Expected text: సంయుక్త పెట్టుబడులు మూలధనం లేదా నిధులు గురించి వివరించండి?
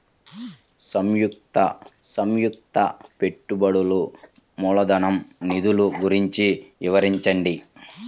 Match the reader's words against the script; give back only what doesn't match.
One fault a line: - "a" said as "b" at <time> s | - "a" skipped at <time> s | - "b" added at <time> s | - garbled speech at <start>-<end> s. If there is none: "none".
- "సంయుక్త" added at 2.1 s
- "లేదా" skipped at 5.2 s